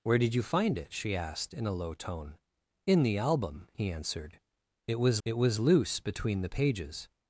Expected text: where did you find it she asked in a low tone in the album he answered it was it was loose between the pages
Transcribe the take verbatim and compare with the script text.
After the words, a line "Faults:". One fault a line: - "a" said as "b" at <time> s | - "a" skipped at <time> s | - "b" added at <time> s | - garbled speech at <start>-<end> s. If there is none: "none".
where did you find it she asked in a low tone in the album he answered it was it was loose between the pages
Faults:
none